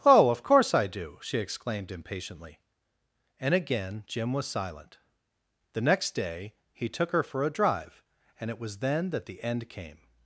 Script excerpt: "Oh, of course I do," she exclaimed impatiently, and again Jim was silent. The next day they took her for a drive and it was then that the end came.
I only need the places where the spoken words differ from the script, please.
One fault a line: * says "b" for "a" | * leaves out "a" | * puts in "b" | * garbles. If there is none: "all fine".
* says "he" for "they"